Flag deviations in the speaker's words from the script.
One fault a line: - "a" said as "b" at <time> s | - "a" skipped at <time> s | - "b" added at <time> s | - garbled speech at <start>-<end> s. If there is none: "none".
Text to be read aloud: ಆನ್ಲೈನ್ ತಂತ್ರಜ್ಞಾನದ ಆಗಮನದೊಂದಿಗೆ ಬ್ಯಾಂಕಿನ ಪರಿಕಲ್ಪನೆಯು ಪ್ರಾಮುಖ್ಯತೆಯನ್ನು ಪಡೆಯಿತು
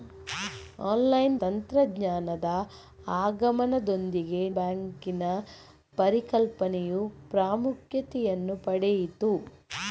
none